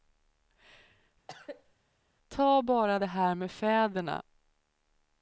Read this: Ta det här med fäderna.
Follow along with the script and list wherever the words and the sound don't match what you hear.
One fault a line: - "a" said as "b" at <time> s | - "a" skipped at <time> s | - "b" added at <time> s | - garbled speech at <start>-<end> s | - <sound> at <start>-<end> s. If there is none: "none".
- cough at 1.3-1.7 s
- "bara" added at 2.6 s